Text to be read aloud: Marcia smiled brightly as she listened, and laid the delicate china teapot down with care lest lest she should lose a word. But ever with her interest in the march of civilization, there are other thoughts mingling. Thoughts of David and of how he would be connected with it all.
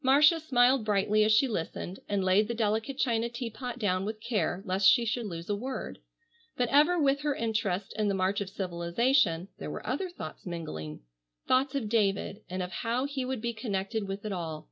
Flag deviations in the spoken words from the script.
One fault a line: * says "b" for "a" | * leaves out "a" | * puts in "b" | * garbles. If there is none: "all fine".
* leaves out "lest"
* says "were" for "are"